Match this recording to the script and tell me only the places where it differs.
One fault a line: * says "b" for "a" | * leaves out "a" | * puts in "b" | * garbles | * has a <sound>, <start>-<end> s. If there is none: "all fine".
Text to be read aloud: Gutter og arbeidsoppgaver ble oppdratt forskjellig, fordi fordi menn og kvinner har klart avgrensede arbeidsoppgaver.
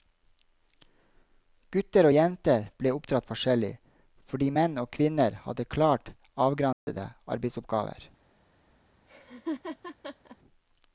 * says "jenter" for "arbeidsoppgaver"
* leaves out "fordi"
* says "hadde" for "har"
* has a dropout, 6.7-6.9 s
* has a laugh, 9.1-10.4 s